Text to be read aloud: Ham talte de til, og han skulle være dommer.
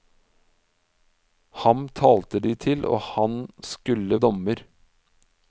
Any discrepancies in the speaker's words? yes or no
yes